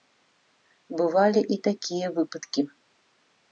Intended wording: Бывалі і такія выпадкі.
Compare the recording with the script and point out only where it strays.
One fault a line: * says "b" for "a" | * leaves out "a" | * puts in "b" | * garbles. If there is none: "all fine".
all fine